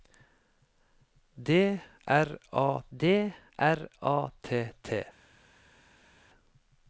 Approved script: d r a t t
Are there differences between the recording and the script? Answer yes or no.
yes